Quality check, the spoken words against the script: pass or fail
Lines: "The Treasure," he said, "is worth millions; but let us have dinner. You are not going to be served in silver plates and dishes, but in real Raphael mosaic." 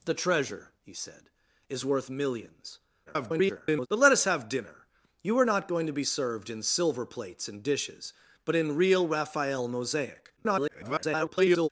fail